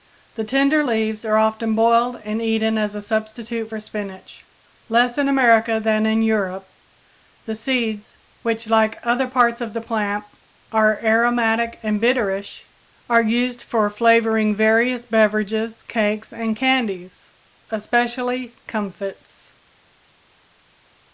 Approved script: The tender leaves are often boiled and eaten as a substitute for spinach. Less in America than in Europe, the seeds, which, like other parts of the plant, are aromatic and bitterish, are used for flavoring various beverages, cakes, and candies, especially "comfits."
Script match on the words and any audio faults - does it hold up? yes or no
yes